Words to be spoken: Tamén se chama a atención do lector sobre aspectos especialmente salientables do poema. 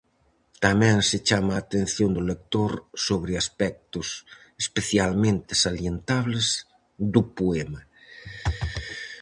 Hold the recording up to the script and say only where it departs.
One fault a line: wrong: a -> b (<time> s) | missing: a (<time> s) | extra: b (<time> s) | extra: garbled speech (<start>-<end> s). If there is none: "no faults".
no faults